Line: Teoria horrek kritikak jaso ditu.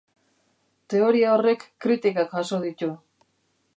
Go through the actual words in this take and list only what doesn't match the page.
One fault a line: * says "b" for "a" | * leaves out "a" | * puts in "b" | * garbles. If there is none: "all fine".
all fine